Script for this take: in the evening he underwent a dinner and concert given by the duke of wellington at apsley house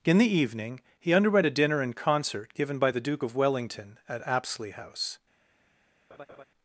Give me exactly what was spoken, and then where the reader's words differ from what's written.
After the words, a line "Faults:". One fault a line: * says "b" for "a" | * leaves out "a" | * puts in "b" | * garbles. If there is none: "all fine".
in the evening he underwent a dinner and concert given by the duke of wellington at apsley house
Faults:
all fine